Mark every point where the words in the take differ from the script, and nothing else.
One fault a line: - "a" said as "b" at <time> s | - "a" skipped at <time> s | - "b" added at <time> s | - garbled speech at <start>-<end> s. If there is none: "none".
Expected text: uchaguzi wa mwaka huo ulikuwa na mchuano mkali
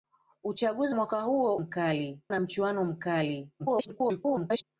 - "wa" skipped at 0.9 s
- "ulikuwa" said as "mkali" at 1.5 s
- garbled speech at 3.6-4.6 s